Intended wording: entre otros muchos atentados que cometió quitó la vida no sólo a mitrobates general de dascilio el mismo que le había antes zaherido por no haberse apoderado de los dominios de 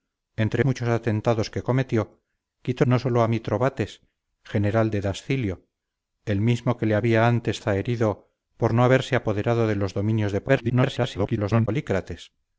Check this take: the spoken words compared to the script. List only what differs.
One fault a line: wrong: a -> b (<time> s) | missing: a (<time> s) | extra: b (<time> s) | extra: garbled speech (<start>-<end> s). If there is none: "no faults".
missing: otros (0.7 s)
missing: la vida (2.8 s)
extra: garbled speech (10.5-11.7 s)